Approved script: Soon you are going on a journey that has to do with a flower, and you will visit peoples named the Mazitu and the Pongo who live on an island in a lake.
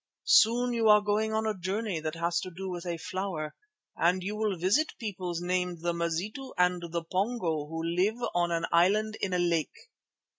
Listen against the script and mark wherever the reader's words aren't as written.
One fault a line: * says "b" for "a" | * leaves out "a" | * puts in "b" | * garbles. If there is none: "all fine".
all fine